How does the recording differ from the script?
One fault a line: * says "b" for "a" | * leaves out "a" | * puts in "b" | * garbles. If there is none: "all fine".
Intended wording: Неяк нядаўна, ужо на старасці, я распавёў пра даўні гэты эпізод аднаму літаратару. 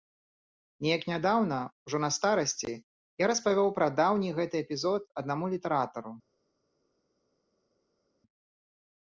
all fine